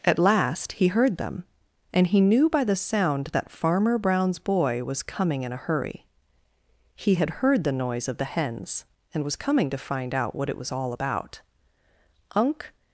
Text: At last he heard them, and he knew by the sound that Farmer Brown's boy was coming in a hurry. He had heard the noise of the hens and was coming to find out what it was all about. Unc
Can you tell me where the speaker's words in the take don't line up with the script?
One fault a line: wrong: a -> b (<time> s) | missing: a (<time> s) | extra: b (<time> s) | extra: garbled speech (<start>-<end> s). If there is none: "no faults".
no faults